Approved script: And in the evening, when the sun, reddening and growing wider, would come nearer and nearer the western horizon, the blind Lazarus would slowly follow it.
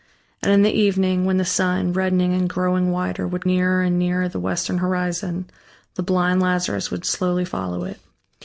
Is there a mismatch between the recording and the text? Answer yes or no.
yes